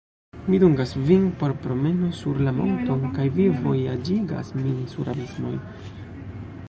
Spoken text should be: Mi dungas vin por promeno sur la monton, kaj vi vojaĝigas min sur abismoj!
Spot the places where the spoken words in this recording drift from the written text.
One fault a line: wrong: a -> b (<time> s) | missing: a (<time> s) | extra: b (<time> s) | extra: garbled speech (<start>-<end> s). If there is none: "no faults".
no faults